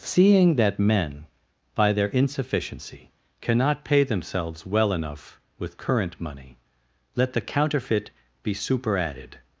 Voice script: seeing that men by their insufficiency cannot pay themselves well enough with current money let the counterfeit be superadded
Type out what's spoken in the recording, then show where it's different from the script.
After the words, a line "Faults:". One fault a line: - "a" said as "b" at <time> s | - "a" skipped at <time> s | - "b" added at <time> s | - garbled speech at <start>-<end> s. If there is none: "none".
seeing that men by their insufficiency cannot pay themselves well enough with current money let the counterfeit be superadded
Faults:
none